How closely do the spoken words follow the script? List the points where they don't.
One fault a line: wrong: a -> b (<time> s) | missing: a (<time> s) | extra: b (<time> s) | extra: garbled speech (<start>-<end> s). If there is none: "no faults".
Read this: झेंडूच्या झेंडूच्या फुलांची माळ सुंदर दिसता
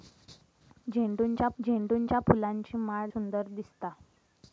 no faults